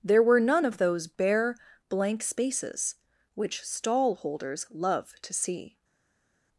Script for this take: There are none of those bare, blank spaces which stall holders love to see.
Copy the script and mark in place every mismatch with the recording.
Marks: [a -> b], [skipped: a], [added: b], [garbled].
There [are -> were] none of those bare, blank spaces which stall holders love to see.